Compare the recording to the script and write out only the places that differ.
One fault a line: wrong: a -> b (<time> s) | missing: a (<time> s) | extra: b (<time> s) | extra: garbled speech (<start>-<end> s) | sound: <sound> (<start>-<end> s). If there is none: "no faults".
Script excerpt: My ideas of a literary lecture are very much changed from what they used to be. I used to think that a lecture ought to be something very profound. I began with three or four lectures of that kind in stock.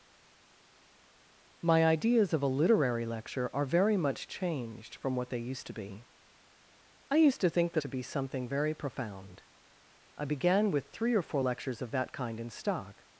missing: a lecture ought (7.8 s)